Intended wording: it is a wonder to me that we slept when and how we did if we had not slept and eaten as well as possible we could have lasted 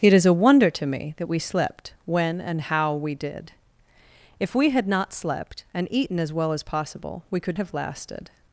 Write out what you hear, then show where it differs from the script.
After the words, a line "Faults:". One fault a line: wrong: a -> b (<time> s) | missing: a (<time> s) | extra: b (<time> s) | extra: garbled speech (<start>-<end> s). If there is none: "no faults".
it is a wonder to me that we slept when and how we did if we had not slept and eaten as well as possible we could have lasted
Faults:
no faults